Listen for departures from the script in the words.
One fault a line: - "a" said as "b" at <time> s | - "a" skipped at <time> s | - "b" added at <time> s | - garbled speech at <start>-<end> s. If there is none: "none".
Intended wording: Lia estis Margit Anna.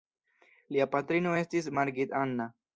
- "patrino" added at 0.9 s